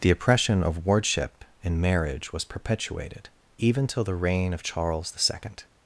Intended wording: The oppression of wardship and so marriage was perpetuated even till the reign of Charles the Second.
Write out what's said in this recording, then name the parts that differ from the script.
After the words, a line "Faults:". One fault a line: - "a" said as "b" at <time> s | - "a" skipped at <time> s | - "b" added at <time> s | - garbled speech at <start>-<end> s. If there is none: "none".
The oppression of wardship and marriage was perpetuated even till the reign of Charles the Second.
Faults:
- "so" skipped at 1.8 s